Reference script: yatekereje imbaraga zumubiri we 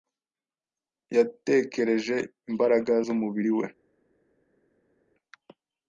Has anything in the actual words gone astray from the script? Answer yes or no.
no